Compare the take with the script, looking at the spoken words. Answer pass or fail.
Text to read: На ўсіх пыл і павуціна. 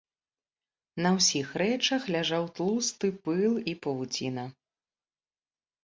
fail